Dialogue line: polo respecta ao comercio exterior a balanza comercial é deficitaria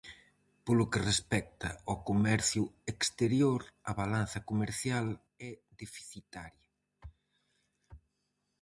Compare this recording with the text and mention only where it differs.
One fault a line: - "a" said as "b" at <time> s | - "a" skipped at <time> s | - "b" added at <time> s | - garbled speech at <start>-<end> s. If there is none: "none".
- "que" added at 0.9 s